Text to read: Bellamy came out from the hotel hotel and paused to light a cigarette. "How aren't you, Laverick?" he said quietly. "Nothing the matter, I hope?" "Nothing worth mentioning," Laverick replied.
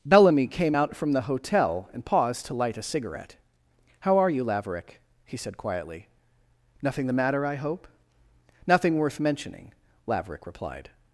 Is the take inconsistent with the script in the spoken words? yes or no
yes